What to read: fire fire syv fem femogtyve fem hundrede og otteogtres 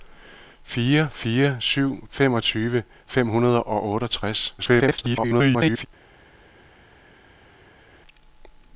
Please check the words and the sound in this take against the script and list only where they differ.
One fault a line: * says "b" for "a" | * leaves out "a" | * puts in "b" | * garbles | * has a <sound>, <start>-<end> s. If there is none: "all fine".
* leaves out "fem"
* garbles